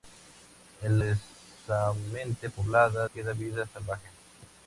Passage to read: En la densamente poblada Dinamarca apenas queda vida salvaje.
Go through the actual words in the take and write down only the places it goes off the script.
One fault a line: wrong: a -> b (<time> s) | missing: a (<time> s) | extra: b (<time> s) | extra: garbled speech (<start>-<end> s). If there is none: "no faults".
missing: la (1.0 s)
missing: Dinamarca apenas (3.1 s)